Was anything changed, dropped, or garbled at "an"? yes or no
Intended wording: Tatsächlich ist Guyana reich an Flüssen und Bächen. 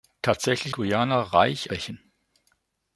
yes